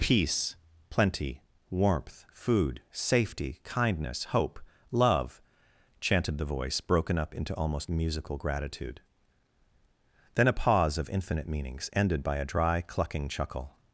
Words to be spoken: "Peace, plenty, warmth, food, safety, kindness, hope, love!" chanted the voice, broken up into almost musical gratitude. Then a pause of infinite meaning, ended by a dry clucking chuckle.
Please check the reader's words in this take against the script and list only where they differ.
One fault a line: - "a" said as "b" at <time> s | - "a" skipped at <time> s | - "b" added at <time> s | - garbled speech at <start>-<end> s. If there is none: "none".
- "meaning" said as "meanings" at 11.5 s